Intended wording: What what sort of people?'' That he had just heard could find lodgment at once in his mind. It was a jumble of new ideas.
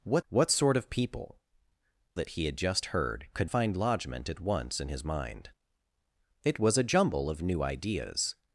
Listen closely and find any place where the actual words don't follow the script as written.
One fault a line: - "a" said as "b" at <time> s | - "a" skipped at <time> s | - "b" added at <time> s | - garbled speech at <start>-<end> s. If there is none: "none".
none